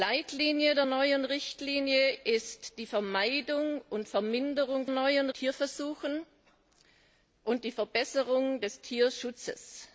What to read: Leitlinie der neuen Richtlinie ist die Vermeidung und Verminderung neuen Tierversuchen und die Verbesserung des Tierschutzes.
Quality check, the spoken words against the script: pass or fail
pass